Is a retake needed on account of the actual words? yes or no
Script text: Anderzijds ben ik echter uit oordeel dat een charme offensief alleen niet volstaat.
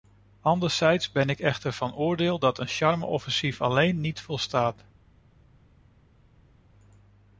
yes